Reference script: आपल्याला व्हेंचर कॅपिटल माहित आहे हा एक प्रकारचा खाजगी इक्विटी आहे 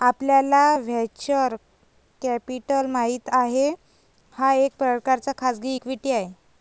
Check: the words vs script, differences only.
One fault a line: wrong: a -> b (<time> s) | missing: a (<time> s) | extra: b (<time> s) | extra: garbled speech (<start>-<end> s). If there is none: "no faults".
no faults